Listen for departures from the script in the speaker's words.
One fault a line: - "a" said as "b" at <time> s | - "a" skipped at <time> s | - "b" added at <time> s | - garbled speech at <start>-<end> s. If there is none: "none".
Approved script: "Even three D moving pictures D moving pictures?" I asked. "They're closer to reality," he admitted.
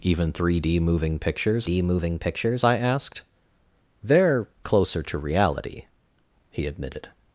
none